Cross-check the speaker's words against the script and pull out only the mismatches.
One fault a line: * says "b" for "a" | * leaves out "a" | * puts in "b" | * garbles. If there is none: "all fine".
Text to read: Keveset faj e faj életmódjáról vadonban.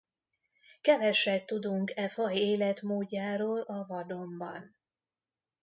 * says "tudunk" for "faj"
* puts in "a"